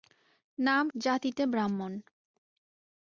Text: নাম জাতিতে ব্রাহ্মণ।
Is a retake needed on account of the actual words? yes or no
no